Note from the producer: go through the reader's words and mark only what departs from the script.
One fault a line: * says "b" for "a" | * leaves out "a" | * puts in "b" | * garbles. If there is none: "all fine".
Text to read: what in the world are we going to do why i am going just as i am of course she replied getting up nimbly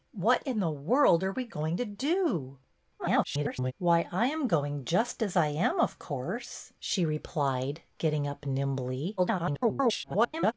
* garbles
* garbles